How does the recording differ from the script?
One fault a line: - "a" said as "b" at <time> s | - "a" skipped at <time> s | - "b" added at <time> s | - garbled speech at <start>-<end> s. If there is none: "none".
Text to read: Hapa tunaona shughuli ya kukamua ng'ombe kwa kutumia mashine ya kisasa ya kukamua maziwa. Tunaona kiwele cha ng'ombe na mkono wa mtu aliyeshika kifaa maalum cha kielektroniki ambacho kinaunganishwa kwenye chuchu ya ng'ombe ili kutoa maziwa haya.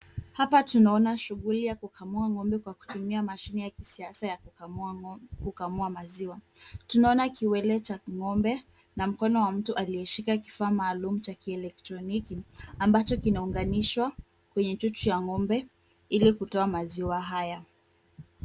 none